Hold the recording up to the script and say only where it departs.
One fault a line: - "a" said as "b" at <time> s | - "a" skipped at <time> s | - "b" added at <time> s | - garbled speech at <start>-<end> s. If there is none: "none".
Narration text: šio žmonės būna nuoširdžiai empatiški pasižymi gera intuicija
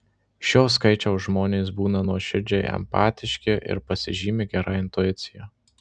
- "skaičiaus" added at 0.8 s
- "ir" added at 3.8 s